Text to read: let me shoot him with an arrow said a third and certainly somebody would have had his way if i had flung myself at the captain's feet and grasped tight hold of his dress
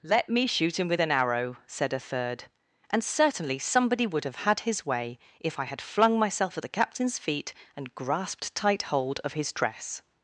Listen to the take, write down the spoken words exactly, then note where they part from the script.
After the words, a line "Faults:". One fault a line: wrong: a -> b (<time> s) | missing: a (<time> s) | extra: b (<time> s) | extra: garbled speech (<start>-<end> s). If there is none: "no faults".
let me shoot him with an arrow said a third and certainly somebody would have had his way if i had flung myself at the captain's feet and grasped tight hold of his dress
Faults:
no faults